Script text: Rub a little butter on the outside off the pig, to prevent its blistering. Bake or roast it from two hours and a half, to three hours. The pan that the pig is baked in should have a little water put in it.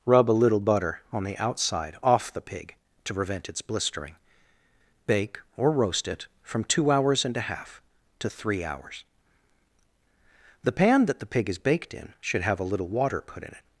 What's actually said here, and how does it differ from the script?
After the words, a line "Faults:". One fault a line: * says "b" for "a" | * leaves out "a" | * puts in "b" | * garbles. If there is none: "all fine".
Rub a little butter on the outside off the pig, to prevent its blistering. Bake or roast it from two hours and a half, to three hours. The pan that the pig is baked in should have a little water put in it.
Faults:
all fine